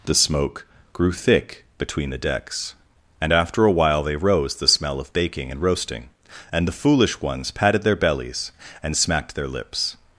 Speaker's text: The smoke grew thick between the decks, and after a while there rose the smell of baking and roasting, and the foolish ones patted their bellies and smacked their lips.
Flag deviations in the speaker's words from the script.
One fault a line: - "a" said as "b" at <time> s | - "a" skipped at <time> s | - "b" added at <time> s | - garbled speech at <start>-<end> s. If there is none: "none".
- "there" said as "they" at 4.0 s